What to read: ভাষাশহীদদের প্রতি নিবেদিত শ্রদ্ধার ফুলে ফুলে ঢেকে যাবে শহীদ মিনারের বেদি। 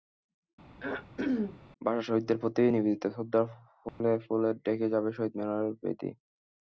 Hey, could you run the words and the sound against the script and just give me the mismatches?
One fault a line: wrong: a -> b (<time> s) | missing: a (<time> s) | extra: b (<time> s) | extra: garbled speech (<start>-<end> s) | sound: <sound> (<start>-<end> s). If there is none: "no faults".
sound: throat clearing (0.8-1.6 s)
sound: dropout (3.9-4.0 s)